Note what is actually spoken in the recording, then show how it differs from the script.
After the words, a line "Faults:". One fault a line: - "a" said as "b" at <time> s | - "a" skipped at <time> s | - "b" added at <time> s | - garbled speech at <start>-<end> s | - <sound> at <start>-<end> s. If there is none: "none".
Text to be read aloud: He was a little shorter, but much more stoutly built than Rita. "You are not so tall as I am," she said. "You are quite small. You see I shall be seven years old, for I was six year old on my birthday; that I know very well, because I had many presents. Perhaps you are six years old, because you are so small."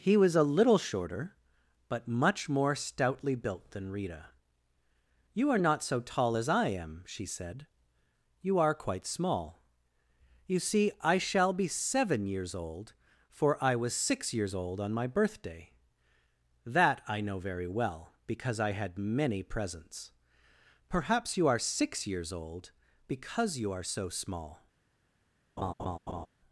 He was a little shorter, but much more stoutly built than Rita. "You are not so tall as I am," she said. "You are quite small. You see I shall be seven years old, for I was six years old on my birthday; that I know very well, because I had many presents. Perhaps you are six years old, because you are so small."
Faults:
- "year" said as "years" at 14.3 s
- laugh at 25.6-26.3 s